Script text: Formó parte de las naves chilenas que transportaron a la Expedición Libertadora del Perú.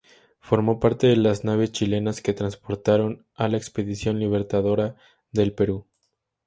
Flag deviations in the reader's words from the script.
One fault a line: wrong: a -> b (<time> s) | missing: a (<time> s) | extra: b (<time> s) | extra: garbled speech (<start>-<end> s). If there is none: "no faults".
no faults